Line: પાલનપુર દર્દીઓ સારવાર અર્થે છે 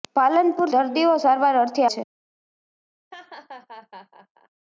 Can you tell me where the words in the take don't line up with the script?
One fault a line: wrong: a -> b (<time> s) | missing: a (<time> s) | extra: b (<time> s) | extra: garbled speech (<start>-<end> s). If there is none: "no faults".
no faults